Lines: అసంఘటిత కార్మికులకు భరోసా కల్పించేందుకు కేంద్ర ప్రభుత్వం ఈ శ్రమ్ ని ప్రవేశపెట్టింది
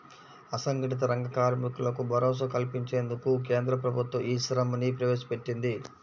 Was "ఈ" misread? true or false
false